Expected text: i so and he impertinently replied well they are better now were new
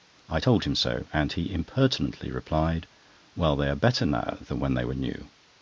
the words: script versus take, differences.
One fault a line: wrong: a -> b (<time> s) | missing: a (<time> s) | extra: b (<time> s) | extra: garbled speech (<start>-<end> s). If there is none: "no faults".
extra: told him (0.4 s)
extra: than when they (4.4 s)